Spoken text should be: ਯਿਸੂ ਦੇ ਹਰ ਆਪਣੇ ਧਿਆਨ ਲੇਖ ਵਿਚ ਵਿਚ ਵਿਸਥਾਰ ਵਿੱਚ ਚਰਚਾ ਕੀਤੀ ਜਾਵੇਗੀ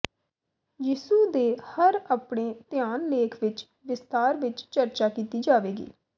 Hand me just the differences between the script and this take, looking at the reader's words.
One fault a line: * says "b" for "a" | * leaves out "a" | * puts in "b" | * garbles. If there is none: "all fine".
* leaves out "ਵਿਚ"